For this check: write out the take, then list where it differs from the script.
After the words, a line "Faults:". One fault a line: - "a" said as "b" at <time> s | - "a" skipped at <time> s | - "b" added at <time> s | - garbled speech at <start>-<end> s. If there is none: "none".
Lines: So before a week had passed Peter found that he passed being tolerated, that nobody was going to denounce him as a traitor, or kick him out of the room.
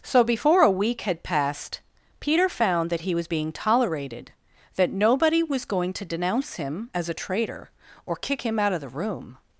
So before a week had passed Peter found that he was being tolerated, that nobody was going to denounce him as a traitor, or kick him out of the room.
Faults:
- "passed" said as "was" at 3.1 s